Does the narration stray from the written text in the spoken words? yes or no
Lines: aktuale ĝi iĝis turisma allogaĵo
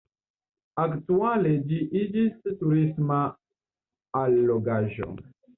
no